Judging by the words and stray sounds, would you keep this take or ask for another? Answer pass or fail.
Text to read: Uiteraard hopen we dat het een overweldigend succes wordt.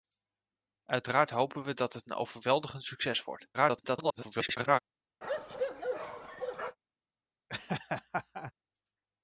fail